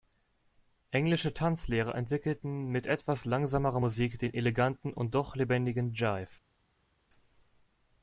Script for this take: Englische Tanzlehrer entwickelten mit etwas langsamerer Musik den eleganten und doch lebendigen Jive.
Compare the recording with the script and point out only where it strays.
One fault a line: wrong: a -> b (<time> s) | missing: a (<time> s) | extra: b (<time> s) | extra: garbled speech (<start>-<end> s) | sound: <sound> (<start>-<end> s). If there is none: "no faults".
no faults